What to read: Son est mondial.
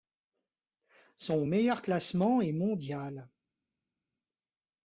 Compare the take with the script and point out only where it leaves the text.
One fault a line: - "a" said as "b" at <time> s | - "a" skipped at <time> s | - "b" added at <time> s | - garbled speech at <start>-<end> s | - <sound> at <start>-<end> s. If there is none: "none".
- "meilleur classement" added at 1.4 s